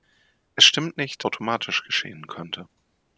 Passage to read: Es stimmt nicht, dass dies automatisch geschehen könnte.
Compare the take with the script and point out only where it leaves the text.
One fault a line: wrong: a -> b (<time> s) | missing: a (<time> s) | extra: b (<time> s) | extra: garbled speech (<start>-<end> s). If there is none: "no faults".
missing: dass dies (1.2 s)